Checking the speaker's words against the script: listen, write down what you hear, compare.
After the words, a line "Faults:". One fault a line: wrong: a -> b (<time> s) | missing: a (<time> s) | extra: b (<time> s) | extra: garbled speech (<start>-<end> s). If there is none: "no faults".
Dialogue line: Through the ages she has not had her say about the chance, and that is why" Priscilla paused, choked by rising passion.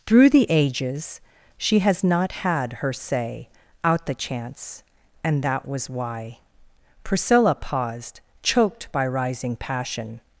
Through the ages she has not had her say out the chance, and that was why" Priscilla paused, choked by rising passion.
Faults:
wrong: about -> out (3.8 s)
wrong: is -> was (5.7 s)